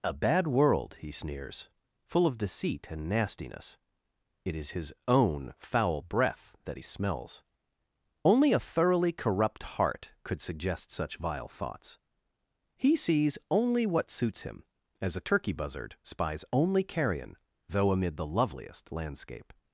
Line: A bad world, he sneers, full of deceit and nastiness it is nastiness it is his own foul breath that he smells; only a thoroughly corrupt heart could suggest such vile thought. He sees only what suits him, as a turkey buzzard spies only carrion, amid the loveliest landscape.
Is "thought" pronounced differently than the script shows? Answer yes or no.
yes